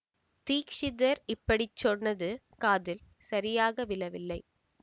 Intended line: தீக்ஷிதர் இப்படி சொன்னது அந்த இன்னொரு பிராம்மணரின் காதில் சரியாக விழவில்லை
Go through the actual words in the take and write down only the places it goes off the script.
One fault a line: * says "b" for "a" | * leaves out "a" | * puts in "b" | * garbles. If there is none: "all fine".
* leaves out "அந்த இன்னொரு பிராம்மணரின்"